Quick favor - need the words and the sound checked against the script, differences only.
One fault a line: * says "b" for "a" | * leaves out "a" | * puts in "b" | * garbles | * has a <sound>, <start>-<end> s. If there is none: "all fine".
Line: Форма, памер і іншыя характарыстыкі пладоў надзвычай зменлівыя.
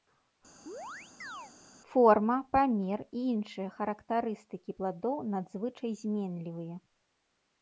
* has a chirp, 0.7-1.5 s